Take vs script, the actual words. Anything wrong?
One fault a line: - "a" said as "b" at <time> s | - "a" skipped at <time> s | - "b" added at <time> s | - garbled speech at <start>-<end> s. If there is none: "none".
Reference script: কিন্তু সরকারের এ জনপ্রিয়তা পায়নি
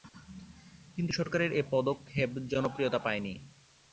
- "পদক্ষেপ" added at 1.7 s